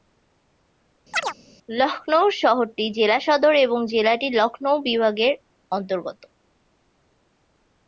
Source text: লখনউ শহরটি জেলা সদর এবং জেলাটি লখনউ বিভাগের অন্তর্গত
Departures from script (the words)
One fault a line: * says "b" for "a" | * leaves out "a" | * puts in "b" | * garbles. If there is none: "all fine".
all fine